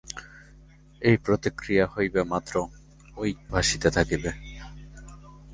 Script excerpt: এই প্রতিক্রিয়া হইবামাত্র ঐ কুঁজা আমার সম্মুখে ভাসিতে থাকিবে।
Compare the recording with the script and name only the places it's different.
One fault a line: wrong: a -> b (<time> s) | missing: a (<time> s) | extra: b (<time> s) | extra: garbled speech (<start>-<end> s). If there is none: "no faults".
missing: কুঁজা আমার সম্মুখে (3.2 s)